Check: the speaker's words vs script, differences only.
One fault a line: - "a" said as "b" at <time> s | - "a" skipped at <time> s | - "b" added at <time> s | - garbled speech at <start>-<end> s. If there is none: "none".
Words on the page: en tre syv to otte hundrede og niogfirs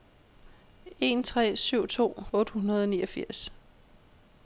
none